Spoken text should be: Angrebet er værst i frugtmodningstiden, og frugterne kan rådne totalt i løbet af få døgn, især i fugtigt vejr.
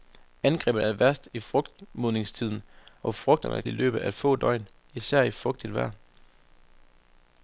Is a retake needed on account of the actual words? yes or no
yes